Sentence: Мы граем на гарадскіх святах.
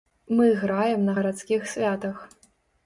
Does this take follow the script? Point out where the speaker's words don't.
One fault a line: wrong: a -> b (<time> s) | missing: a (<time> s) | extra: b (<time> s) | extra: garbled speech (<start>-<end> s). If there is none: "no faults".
no faults